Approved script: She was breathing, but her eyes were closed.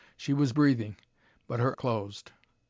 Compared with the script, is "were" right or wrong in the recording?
wrong